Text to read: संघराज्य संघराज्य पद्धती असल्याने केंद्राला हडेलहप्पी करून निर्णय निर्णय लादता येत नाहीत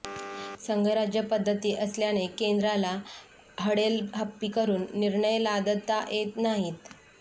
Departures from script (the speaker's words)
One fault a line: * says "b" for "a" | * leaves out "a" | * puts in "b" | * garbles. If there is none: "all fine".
* leaves out "संघराज्य"
* leaves out "निर्णय"